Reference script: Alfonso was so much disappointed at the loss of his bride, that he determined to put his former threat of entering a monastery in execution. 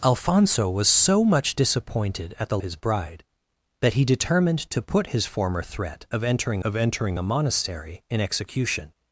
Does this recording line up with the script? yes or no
no